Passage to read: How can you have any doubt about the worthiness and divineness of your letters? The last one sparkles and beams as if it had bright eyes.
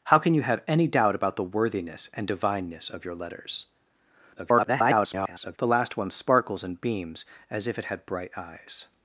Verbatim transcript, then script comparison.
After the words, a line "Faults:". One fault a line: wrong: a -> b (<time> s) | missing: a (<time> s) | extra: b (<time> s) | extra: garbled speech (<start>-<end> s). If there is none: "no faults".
How can you have any doubt about the worthiness and divineness of your letters? [garbled] The last one sparkles and beams as if it had bright eyes.
Faults:
extra: garbled speech (4.4-5.6 s)